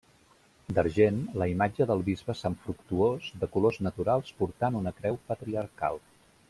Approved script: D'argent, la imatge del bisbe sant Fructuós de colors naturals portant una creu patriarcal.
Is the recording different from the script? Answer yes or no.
no